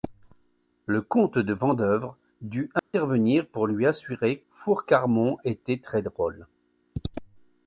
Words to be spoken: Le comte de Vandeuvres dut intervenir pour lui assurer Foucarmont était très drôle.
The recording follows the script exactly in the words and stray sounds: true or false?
false